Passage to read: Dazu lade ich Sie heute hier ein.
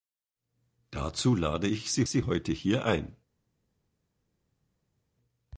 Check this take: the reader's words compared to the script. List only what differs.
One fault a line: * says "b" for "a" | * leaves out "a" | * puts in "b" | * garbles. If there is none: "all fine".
* puts in "Sie"